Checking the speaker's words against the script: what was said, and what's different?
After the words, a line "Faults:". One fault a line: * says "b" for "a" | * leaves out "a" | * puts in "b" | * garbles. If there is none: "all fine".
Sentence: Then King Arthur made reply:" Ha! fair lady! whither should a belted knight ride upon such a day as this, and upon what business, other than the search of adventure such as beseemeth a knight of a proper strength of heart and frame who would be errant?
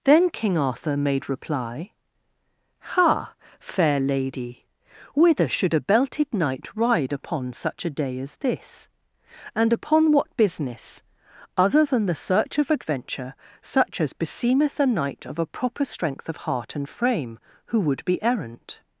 Then King Arthur made reply:" Ha! fair lady! whither should a belted knight ride upon such a day as this, and upon what business, other than the search of adventure such as beseemeth a knight of a proper strength of heart and frame who would be errant?
Faults:
all fine